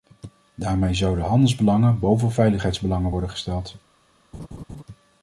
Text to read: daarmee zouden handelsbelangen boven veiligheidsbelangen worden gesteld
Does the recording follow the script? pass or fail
pass